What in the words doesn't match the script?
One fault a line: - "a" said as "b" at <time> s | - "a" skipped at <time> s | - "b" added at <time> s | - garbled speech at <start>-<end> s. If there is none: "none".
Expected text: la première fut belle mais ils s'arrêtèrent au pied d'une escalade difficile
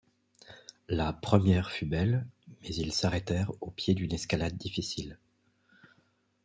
none